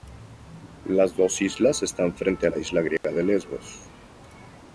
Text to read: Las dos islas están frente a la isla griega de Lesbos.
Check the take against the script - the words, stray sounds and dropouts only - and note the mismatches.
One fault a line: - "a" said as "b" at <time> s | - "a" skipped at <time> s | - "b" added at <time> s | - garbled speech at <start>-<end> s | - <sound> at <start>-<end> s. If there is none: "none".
- dropout at 3.0-3.0 s